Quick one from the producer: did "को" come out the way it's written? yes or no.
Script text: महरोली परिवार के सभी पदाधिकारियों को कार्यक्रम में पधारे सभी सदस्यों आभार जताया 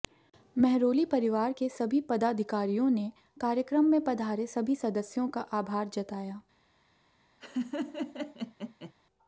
no